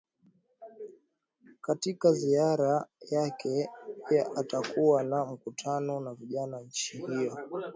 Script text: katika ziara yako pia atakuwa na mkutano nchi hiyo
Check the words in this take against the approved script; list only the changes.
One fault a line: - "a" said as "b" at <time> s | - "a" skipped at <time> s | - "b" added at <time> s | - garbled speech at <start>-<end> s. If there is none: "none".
- "yako" said as "yake" at 3.1 s
- "na vijana" added at 6.0 s